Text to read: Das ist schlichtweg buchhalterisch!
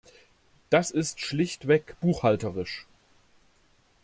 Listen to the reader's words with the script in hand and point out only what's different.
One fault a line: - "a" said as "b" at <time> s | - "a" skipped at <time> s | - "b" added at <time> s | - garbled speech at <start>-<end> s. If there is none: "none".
none